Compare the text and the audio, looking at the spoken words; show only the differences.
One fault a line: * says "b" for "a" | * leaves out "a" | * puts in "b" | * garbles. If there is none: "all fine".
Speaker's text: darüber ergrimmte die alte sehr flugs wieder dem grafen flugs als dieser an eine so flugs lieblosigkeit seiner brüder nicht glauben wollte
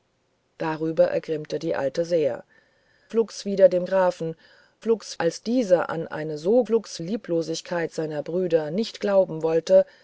all fine